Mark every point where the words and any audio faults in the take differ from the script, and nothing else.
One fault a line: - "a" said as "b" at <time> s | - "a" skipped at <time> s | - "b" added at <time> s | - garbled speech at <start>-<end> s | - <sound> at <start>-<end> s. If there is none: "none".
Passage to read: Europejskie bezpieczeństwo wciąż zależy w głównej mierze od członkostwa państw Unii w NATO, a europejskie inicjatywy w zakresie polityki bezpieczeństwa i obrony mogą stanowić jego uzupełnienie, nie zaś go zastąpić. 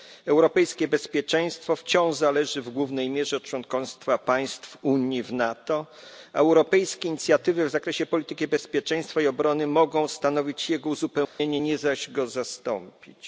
- dropout at 11.2-11.4 s